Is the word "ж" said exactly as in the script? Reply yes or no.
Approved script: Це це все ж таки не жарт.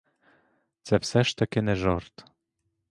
yes